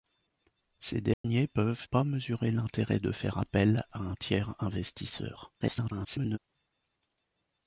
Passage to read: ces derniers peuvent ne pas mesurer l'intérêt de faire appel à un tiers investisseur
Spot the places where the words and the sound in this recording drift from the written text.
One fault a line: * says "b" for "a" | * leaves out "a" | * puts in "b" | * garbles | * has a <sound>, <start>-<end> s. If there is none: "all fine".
* has a dropout, 1.1-1.2 s
* leaves out "ne"
* garbles